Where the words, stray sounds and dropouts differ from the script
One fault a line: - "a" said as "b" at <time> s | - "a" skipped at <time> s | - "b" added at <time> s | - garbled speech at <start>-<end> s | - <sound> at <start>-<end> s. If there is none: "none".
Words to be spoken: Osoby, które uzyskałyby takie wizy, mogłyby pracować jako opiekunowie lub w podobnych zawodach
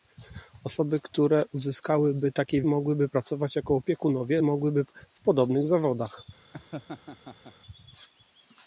- "wizy" skipped at 2.6 s
- "lub" said as "mogłyby" at 4.4 s
- laugh at 6.5-7.5 s